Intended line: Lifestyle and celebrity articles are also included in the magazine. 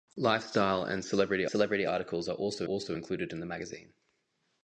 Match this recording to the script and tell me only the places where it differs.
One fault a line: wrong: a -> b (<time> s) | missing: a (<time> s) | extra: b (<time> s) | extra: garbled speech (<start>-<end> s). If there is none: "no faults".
extra: celebrity (1.5 s)
extra: also (2.6 s)